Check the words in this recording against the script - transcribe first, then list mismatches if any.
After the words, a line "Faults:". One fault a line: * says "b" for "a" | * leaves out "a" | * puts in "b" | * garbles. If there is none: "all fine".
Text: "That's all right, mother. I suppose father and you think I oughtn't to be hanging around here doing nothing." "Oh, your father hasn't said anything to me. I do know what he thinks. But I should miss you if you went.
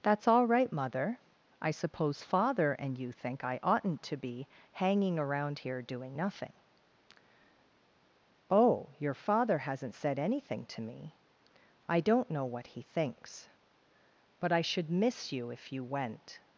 "That's all right, mother. I suppose father and you think I oughtn't to be hanging around here doing nothing." "Oh, your father hasn't said anything to me. I don't know what he thinks. But I should miss you if you went.
Faults:
* says "don't" for "do"